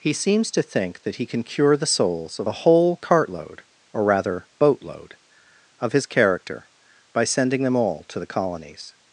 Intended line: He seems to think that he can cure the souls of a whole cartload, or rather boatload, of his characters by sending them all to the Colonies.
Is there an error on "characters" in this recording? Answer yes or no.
yes